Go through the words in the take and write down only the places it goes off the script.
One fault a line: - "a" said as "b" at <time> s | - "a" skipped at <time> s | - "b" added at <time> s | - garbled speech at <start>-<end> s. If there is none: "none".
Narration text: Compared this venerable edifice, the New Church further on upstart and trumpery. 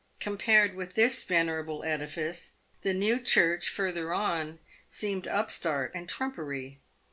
- "with" added at 0.7 s
- "seemed" added at 4.9 s